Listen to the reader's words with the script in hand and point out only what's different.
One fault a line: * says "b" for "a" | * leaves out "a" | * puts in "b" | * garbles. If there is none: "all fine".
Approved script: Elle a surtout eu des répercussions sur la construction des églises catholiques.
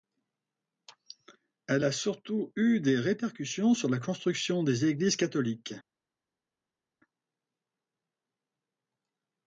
all fine